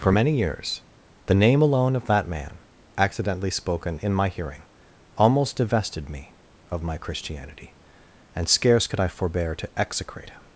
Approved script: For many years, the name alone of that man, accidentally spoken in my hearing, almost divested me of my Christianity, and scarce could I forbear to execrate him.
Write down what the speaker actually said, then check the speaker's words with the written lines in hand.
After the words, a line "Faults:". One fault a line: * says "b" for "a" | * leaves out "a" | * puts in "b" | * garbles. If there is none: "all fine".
For many years, the name alone of that man, accidentally spoken in my hearing, almost divested me of my Christianity, and scarce could I forbear to execrate him.
Faults:
all fine